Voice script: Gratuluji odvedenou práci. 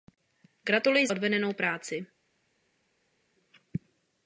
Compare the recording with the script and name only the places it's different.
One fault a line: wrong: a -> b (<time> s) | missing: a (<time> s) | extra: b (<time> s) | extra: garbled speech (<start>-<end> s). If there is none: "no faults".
no faults